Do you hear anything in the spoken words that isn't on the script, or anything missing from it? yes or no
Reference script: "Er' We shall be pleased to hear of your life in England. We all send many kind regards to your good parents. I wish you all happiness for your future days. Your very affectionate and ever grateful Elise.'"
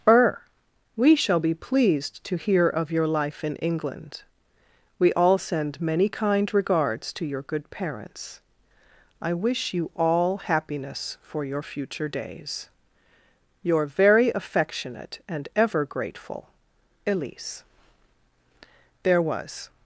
yes